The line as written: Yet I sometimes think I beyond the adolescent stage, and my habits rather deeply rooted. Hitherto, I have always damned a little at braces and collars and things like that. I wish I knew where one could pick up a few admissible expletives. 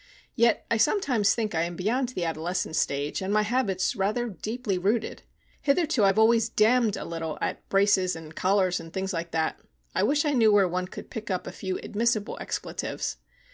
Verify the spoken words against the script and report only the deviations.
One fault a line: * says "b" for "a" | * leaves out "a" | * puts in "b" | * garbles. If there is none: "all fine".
* puts in "am"